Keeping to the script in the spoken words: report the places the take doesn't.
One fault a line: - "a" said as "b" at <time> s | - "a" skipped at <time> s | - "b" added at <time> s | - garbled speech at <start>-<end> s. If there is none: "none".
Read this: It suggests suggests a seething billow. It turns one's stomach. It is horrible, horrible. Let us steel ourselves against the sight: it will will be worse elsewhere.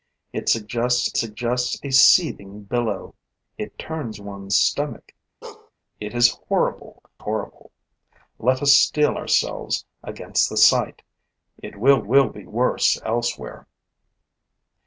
none